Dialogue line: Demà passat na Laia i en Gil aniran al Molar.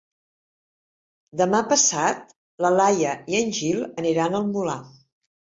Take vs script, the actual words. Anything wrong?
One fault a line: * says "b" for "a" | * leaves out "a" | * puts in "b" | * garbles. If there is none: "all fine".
all fine